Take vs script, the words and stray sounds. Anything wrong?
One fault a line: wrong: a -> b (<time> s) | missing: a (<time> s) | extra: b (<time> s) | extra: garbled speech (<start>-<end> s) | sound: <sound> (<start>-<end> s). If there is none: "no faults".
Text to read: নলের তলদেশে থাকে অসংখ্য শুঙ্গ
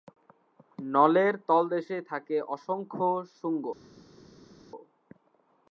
no faults